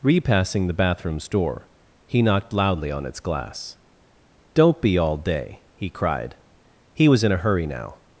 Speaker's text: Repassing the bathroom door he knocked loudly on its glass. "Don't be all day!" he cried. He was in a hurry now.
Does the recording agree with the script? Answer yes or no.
no